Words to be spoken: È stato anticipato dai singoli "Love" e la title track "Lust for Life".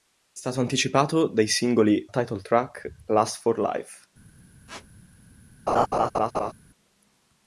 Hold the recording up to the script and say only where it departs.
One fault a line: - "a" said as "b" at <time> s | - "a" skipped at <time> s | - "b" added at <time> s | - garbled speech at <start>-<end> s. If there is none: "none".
- "Love e la" skipped at 2.1 s